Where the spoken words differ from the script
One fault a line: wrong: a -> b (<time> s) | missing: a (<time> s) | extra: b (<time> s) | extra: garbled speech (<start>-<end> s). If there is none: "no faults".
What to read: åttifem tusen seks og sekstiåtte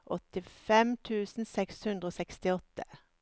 extra: hundre (1.9 s)